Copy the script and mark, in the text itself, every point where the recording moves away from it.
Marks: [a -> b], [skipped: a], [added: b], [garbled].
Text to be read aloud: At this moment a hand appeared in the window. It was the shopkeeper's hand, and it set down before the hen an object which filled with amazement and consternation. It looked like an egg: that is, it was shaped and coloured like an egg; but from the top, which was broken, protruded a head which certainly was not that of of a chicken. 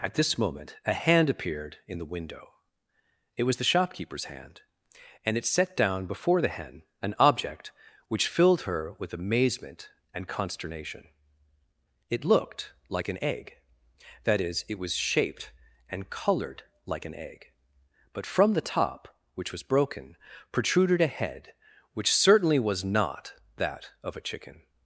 At this moment a hand appeared in the window. It was the shopkeeper's hand, and it set down before the hen an object which filled [added: her] with amazement and consternation. It looked like an egg: that is, it was shaped and coloured like an egg; but from the top, which was broken, protruded a head which certainly was not that of [skipped: of] a chicken.